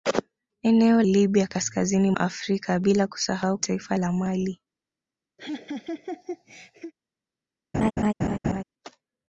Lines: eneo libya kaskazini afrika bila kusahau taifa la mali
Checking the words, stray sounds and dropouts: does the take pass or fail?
fail